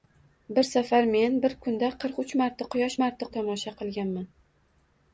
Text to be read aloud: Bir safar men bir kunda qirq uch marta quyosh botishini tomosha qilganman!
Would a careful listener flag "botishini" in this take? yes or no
yes